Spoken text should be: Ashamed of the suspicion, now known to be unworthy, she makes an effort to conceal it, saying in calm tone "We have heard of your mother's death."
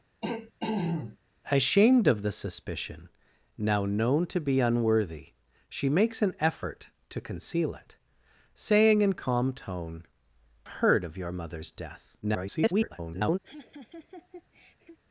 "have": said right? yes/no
no